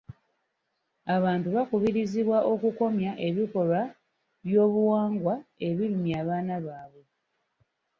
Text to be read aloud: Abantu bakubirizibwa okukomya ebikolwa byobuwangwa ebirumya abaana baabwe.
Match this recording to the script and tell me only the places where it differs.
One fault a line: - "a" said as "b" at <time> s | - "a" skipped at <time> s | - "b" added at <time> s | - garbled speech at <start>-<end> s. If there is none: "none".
none